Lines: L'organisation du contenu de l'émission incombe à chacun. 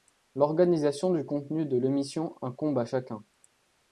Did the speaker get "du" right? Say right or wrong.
right